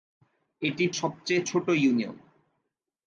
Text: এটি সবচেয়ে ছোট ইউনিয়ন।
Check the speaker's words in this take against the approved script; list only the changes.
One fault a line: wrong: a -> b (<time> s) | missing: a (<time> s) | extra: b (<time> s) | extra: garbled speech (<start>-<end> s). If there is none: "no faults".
no faults